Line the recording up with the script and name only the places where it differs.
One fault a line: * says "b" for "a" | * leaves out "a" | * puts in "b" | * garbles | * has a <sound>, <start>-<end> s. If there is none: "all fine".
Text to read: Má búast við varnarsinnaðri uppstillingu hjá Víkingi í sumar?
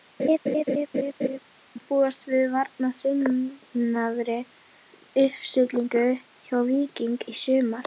* has a laugh, 0.2-1.4 s